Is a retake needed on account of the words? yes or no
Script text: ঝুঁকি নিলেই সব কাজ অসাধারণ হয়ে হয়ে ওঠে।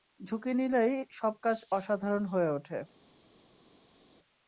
yes